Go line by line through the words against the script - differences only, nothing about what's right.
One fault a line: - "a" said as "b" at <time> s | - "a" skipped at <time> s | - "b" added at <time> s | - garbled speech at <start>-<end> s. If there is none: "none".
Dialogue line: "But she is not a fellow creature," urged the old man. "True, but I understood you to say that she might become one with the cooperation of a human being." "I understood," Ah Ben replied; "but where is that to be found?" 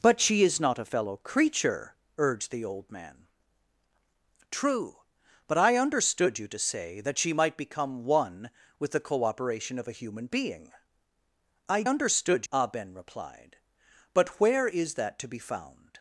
none